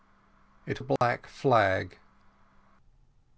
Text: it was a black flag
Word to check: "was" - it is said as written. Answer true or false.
false